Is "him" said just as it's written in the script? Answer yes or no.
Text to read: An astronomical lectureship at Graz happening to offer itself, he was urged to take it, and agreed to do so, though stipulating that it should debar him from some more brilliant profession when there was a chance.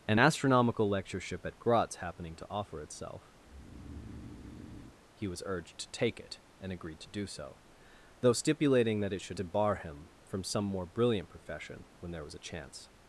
yes